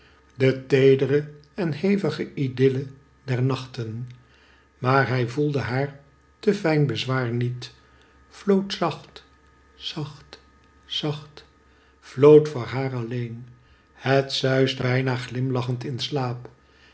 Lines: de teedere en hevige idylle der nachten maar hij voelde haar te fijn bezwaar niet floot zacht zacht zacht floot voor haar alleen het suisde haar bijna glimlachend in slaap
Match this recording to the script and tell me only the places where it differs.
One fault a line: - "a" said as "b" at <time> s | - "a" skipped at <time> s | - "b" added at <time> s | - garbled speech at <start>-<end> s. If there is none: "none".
- "haar" skipped at 14.8 s